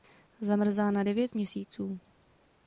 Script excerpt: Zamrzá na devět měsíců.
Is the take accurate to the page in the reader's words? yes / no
yes